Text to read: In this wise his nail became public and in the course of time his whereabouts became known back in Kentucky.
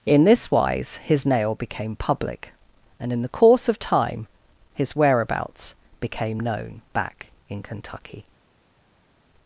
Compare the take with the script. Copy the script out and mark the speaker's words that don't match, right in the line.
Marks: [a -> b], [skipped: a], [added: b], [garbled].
In this wise his nail became public and in the course of time his whereabouts became known back in Kentucky.